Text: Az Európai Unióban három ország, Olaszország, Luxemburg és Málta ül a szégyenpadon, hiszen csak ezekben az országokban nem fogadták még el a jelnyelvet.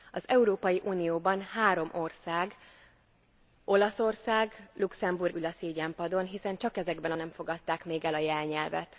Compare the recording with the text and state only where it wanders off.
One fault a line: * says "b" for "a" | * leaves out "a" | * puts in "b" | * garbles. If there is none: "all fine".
* leaves out "és Málta"
* leaves out "az országokban"